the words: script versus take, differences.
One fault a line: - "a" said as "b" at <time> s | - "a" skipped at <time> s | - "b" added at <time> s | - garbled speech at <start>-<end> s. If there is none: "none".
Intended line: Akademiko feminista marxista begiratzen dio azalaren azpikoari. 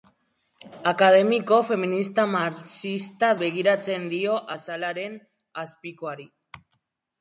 none